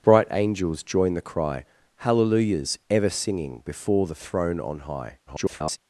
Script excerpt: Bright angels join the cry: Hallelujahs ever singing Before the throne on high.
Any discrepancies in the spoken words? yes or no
yes